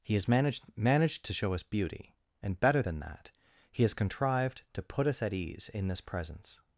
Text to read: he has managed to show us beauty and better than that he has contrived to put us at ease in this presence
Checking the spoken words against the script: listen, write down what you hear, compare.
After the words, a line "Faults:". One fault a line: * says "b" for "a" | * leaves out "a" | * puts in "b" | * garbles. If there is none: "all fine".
he has managed managed to show us beauty and better than that he has contrived to put us at ease in this presence
Faults:
* puts in "managed"